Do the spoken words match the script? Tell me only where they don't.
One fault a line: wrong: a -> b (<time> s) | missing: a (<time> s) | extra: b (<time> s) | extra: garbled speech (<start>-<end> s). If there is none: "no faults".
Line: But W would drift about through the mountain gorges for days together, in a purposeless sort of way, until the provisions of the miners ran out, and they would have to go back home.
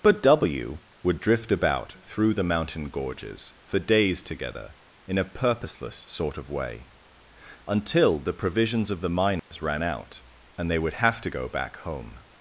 no faults